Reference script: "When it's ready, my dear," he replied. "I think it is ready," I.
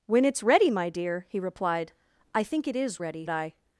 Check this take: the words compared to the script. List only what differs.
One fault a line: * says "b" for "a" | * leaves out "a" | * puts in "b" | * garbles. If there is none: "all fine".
all fine